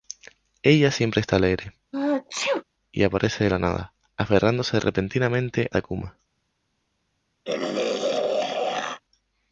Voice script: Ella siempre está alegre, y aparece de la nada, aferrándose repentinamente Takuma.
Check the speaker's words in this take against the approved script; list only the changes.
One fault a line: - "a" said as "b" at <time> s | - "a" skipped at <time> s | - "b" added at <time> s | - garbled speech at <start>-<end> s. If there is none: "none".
none